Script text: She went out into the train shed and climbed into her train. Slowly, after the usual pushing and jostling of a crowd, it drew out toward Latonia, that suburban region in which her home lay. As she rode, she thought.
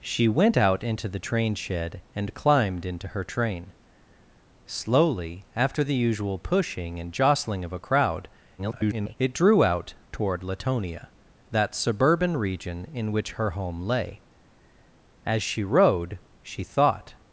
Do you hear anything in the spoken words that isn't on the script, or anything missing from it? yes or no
yes